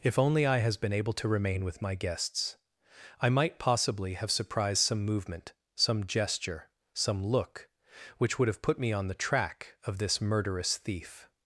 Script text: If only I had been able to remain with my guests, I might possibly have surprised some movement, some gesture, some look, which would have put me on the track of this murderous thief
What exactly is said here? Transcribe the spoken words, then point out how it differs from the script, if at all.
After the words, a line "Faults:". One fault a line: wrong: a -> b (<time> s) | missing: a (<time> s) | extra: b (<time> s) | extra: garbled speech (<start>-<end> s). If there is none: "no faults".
If only I has been able to remain with my guests, I might possibly have surprised some movement, some gesture, some look, which would have put me on the track of this murderous thief
Faults:
wrong: had -> has (0.6 s)